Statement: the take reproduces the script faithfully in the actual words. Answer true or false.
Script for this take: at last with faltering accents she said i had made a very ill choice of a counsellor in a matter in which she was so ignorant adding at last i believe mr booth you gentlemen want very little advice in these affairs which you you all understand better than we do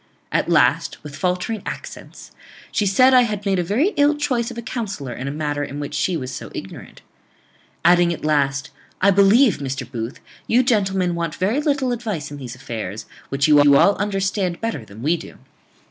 true